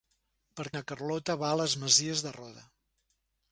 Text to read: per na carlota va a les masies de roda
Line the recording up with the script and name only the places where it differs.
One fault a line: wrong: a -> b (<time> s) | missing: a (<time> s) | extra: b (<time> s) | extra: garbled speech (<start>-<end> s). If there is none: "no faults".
no faults